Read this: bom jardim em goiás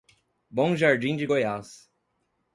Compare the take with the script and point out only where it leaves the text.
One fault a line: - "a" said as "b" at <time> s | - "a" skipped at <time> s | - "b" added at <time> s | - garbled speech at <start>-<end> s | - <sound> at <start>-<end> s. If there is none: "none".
- "em" said as "de" at 1.1 s